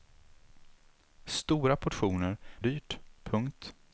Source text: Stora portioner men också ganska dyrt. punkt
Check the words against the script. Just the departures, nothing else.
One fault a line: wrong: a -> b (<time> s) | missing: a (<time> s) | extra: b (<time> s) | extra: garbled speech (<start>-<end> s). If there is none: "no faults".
missing: men också ganska (2.4 s)